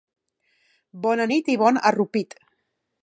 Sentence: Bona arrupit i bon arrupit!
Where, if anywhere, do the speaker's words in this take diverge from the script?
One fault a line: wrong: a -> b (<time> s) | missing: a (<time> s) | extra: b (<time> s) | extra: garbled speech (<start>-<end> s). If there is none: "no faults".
wrong: arrupit -> nit (1.3 s)